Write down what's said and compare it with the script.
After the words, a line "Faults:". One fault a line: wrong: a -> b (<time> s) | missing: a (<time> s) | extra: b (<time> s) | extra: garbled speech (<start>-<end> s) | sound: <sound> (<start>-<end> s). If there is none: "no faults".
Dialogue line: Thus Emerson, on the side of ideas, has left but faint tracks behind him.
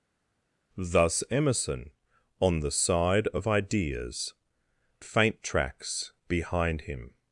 Thus Emerson, on the side of ideas, faint tracks behind him.
Faults:
missing: has left but (4.3 s)